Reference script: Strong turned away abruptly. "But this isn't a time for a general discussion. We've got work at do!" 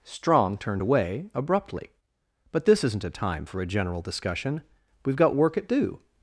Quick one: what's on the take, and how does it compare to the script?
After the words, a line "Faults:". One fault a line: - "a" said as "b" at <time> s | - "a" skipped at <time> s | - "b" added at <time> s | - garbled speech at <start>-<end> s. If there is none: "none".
Strong turned away abruptly. "But this isn't a time for a general discussion. We've got work at do!"
Faults:
none